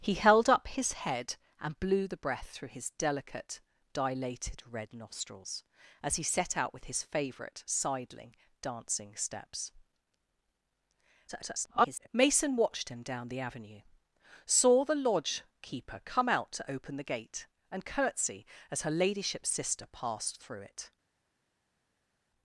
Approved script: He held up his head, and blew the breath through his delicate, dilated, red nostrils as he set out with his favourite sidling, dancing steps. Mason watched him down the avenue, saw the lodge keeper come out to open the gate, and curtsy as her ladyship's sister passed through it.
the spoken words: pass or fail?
fail